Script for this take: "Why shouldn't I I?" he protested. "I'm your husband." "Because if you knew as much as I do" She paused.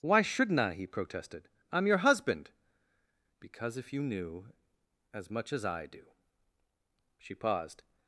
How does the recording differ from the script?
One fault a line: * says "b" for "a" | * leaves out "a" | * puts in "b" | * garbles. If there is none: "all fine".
* leaves out "I"